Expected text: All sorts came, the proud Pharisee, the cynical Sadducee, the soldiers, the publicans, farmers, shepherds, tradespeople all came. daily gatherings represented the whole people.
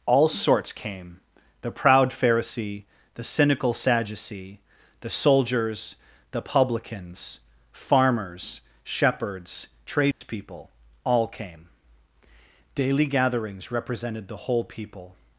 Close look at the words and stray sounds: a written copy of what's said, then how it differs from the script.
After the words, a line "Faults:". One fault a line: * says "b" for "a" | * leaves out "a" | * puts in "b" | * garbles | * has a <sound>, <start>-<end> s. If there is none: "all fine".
All sorts came, the proud Pharisee, the cynical Sadducee, the soldiers, the publicans, farmers, shepherds, tradespeople all came. daily gatherings represented the whole people.
Faults:
* has a dropout, 10.1-10.2 s